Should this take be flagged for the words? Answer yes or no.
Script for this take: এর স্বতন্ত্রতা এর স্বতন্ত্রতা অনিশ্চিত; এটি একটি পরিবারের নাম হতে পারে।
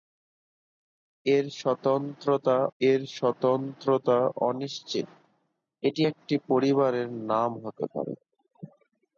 no